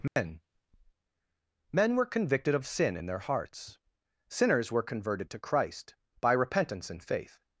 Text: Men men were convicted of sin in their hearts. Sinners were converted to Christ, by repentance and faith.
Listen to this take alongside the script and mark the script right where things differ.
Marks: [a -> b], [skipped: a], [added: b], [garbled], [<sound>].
Men [dropout] men were convicted of sin in their hearts. Sinners were converted to Christ, by repentance and faith.